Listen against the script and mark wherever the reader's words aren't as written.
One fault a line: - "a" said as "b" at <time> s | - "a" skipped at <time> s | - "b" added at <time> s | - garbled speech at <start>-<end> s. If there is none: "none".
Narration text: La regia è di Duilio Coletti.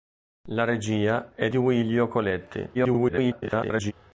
- "di" skipped at 1.5 s
- garbled speech at 2.7-3.9 s